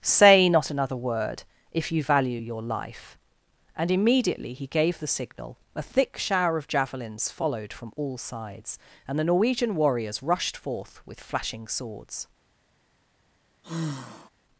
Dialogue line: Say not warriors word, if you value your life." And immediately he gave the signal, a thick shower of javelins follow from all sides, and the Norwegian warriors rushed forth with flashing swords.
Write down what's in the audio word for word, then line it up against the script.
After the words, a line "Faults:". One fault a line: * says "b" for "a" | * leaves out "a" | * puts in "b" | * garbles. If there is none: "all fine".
Say not another word, if you value your life." And immediately he gave the signal, a thick shower of javelins followed from all sides, and the Norwegian warriors rushed forth with flashing swords.
Faults:
* says "another" for "warriors"
* says "followed" for "follow"